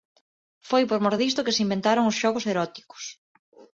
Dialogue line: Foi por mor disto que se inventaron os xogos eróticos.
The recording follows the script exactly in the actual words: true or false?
true